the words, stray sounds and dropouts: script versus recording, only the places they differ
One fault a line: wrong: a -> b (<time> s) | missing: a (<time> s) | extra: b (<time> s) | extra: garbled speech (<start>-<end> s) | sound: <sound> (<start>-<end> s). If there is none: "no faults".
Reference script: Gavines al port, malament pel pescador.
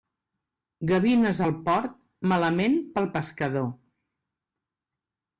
no faults